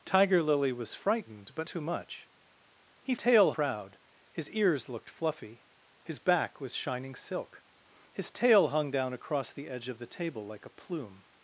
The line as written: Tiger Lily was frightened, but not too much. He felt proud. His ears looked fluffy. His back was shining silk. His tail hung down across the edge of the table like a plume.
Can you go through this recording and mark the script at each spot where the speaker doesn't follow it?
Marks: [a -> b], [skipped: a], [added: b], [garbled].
Tiger Lily was frightened, but [skipped: not] too much. He [felt -> tail] proud. His ears looked fluffy. His back was shining silk. His tail hung down across the edge of the table like a plume.